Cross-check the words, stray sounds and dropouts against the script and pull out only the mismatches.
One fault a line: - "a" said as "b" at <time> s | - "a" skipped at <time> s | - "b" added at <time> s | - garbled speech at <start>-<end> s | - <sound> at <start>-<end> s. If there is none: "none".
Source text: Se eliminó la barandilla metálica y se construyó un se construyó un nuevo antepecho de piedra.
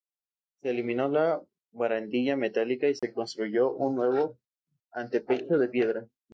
- dropout at 3.0-3.0 s
- "se construyó un" skipped at 4.0 s